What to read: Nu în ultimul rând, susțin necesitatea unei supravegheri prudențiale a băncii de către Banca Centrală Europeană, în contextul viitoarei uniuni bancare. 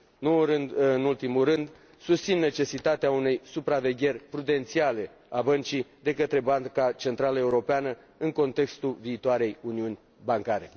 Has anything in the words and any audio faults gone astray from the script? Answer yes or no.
no